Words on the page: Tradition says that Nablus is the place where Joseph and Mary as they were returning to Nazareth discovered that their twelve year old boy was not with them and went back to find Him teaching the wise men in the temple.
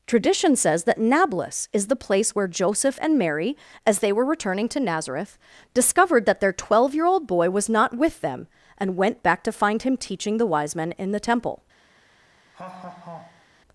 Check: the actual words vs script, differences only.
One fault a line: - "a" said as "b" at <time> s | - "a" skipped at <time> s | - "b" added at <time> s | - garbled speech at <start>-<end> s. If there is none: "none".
none